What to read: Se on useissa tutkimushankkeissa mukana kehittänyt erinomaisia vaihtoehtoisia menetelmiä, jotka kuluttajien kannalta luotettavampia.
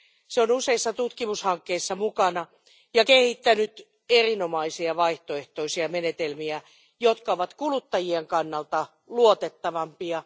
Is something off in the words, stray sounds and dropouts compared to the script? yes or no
yes